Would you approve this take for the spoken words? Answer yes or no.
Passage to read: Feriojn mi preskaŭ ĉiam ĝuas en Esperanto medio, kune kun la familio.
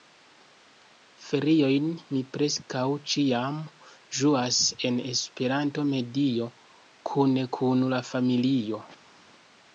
yes